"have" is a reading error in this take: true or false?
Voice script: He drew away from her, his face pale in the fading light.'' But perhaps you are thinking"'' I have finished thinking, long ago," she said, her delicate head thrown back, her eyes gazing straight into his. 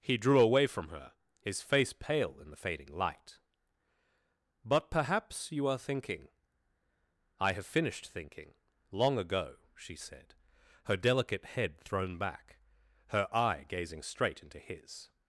false